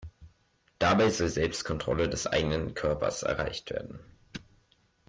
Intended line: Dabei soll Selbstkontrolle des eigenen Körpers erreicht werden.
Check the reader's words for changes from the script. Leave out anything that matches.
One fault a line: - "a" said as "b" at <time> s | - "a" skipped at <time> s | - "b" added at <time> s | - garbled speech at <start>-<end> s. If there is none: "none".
none